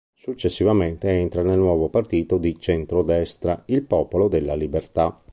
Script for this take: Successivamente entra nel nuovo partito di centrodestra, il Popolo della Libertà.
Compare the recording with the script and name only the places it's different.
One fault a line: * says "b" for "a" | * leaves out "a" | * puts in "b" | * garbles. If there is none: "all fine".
all fine